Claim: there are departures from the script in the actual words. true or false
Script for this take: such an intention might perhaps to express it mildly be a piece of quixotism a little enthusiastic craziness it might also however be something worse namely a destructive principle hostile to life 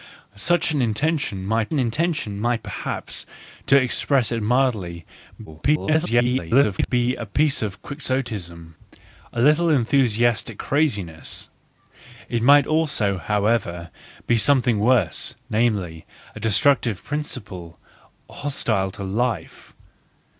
true